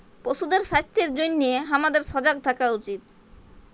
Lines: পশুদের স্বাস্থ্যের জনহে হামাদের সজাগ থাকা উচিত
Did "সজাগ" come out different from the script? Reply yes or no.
no